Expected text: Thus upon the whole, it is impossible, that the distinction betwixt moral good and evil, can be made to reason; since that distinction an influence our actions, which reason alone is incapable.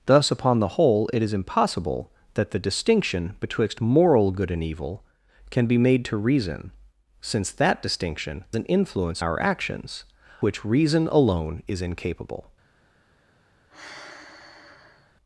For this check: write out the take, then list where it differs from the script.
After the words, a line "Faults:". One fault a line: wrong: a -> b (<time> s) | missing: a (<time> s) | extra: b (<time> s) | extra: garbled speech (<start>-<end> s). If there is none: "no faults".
Thus upon the whole, it is impossible, that the distinction betwixt moral good and evil, can be made to reason; since that distinction an influence our actions, which reason alone is incapable.
Faults:
no faults